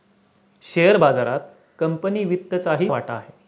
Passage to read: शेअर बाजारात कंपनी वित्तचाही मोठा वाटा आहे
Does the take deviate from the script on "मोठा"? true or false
true